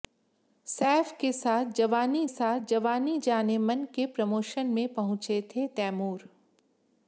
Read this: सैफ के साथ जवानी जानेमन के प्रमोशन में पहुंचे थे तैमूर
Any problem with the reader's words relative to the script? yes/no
yes